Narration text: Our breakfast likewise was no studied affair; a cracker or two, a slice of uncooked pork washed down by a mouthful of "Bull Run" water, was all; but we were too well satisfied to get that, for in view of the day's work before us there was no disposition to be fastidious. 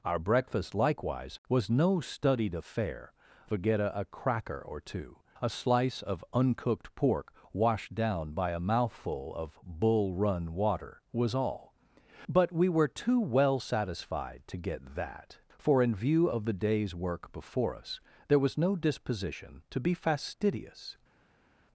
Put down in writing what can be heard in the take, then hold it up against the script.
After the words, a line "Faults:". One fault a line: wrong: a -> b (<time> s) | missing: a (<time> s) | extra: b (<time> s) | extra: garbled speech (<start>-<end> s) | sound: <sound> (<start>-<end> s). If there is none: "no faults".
Our breakfast likewise was no studied affair; forget a a cracker or two, a slice of uncooked pork washed down by a mouthful of "Bull Run" water, was all; but we were too well satisfied to get that, for in view of the day's work before us there was no disposition to be fastidious.
Faults:
extra: forget a (3.5 s)